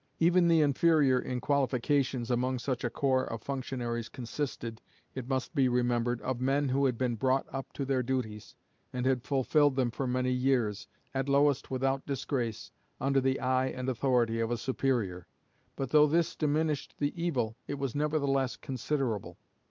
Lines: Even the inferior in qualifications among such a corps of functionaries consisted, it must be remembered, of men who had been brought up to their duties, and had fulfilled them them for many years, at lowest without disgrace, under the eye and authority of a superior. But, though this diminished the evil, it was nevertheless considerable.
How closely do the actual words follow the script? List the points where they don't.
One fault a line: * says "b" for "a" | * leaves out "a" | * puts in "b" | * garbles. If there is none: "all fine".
* leaves out "them"